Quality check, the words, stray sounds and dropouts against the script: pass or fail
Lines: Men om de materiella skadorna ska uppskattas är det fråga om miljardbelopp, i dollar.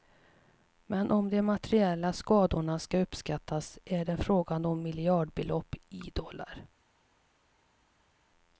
pass